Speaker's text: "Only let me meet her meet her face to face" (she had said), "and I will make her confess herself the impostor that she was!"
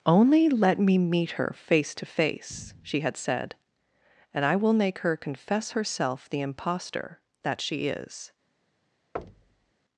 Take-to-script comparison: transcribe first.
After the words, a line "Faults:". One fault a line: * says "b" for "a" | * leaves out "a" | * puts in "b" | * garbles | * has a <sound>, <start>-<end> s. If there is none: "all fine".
"Only let me meet her face to face" (she had said), "and I will make her confess herself the impostor that she is!"
Faults:
* leaves out "meet her"
* says "is" for "was"
* has a thud, 9.1-9.7 s